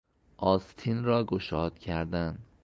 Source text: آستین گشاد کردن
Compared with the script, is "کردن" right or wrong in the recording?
right